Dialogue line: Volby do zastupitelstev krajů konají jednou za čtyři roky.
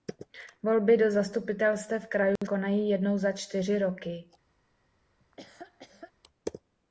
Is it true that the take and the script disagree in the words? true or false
false